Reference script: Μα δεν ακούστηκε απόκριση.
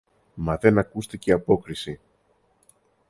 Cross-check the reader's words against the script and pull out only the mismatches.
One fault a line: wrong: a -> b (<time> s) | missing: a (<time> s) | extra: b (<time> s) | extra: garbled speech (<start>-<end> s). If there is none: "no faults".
no faults